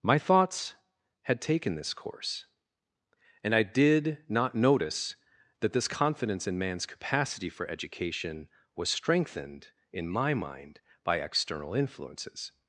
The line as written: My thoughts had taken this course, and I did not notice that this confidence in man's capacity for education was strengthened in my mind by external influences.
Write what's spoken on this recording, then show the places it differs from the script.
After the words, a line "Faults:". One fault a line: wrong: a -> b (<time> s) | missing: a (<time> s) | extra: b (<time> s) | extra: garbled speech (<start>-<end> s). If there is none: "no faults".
My thoughts had taken this course, and I did not notice that this confidence in man's capacity for education was strengthened in my mind by external influences.
Faults:
no faults